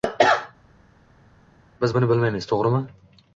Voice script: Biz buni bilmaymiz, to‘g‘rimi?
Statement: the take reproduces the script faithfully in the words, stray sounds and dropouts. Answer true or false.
true